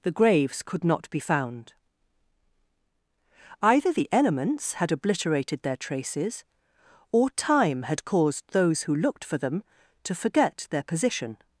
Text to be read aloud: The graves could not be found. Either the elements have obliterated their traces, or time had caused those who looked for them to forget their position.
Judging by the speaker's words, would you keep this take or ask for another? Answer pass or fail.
fail